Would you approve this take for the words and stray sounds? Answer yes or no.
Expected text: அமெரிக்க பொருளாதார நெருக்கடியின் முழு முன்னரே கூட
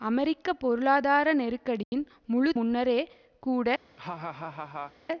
no